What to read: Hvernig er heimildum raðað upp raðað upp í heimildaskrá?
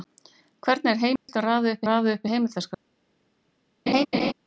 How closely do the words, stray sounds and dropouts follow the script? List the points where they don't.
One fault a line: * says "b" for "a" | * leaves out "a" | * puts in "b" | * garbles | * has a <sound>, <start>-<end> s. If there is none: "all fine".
* has a dropout, 1.2-1.3 s
* has a laugh, 3.9-4.3 s